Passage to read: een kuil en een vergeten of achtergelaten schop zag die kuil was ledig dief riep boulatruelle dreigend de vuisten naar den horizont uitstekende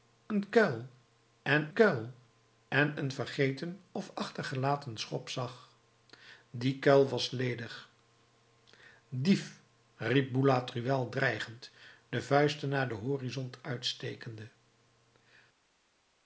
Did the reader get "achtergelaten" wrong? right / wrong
right